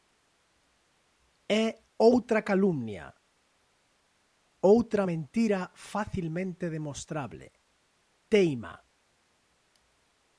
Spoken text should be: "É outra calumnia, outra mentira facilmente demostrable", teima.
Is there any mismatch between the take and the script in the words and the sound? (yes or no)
no